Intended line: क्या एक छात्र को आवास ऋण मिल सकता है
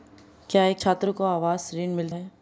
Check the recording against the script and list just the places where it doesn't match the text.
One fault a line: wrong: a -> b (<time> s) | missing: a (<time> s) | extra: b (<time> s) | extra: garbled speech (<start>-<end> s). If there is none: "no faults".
missing: सकता (2.1 s)